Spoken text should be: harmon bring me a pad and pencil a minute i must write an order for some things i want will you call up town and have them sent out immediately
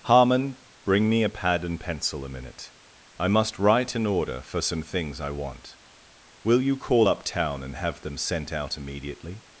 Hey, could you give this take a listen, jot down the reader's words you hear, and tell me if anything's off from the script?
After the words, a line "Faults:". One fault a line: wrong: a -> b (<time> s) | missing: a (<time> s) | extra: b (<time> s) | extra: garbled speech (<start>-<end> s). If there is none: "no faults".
harmon bring me a pad and pencil a minute i must write an order for some things i want will you call up town and have them sent out immediately
Faults:
no faults